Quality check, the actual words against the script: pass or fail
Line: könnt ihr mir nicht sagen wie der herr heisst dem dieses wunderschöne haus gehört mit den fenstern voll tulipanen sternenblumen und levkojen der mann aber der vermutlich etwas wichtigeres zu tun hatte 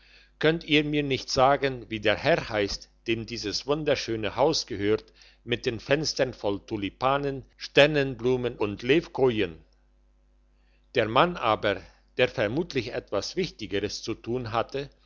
pass